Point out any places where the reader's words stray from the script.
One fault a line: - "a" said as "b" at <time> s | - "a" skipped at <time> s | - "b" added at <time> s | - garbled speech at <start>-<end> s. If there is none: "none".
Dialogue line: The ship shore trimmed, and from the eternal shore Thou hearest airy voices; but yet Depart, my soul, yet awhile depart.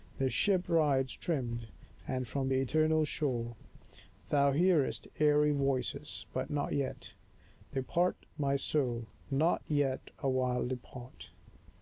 - "shore" said as "rides" at 0.7 s
- "not" added at 6.5 s
- "not" added at 9.3 s